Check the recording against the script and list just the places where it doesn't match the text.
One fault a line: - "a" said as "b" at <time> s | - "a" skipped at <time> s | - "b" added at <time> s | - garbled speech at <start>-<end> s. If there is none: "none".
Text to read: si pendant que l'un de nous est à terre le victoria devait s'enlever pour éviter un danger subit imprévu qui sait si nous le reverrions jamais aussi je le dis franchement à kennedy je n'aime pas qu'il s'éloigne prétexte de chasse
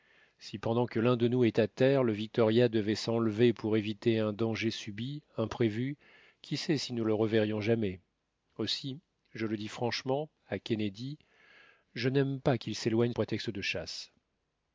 none